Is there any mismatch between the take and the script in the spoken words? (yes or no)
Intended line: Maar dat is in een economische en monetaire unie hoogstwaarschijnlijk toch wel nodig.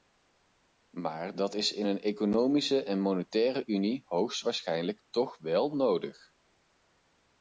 no